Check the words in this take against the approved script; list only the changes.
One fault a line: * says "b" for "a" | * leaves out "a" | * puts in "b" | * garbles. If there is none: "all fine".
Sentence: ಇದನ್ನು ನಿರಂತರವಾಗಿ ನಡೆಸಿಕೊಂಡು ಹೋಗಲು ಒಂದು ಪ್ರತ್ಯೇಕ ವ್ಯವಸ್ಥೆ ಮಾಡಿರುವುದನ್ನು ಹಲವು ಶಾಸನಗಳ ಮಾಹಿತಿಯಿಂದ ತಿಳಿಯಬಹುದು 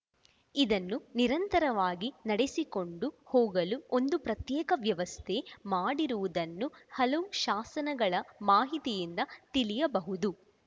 all fine